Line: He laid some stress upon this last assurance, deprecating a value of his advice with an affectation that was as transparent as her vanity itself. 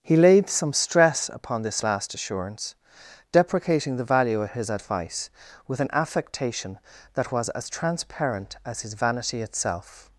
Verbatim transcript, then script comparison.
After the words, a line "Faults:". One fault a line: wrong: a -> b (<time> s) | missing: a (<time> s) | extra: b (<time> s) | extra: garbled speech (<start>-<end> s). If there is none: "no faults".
He laid some stress upon this last assurance, deprecating the value of his advice with an affectation that was as transparent as his vanity itself.
Faults:
wrong: a -> the (4.0 s)
wrong: her -> his (8.8 s)